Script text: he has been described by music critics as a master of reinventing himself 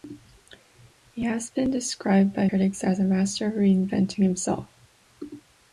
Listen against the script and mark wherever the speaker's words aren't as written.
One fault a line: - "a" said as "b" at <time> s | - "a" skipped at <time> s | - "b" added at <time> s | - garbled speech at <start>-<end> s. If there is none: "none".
- "music" skipped at 2.5 s